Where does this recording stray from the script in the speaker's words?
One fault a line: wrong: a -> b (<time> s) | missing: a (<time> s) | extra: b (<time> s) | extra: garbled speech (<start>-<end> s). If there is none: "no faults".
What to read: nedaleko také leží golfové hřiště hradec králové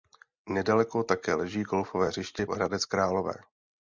no faults